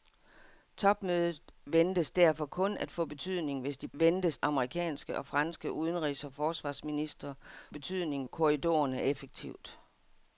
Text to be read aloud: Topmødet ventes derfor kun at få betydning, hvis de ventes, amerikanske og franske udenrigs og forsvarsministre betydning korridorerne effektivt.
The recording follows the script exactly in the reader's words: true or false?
true